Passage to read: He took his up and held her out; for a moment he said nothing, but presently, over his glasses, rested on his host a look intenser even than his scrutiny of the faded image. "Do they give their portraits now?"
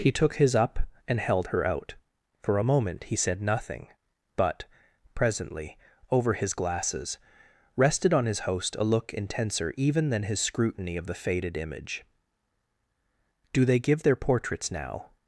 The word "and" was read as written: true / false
true